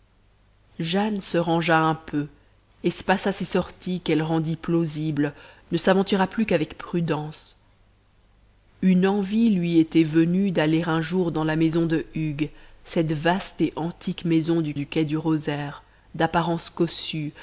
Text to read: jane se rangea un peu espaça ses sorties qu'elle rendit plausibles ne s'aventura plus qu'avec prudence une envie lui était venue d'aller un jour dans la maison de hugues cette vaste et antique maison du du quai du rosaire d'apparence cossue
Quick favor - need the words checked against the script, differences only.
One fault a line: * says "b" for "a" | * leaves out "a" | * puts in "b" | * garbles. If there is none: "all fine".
all fine